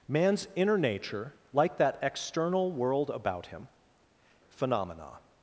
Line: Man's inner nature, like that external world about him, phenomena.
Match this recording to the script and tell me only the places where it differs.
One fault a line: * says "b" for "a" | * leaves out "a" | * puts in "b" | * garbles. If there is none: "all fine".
all fine